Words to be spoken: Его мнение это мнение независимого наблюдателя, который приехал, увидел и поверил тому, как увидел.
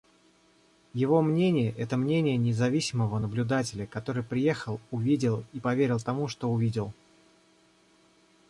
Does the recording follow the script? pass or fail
fail